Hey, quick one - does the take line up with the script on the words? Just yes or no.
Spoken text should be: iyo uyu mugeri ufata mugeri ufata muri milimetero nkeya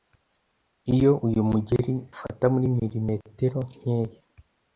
no